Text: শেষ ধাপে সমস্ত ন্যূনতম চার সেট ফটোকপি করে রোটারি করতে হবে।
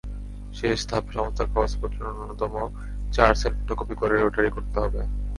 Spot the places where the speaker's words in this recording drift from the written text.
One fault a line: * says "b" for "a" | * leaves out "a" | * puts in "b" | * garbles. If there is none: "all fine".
* puts in "কাগজপত্র"